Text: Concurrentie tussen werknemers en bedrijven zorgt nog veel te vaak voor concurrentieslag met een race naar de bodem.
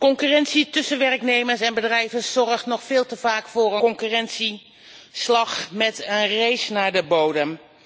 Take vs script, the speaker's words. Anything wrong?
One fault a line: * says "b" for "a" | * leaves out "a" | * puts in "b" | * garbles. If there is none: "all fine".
all fine